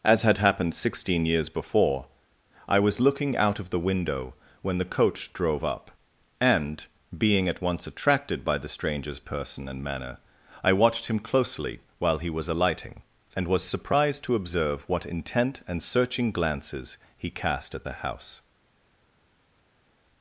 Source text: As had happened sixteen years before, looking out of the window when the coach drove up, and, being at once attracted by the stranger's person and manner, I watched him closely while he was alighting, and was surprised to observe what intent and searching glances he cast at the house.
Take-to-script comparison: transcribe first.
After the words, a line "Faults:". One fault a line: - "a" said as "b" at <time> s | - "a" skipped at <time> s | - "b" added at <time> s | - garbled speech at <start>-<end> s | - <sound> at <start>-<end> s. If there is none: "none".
As had happened sixteen years before, I was looking out of the window when the coach drove up, and, being at once attracted by the stranger's person and manner, I watched him closely while he was alighting, and was surprised to observe what intent and searching glances he cast at the house.
Faults:
- "I was" added at 2.7 s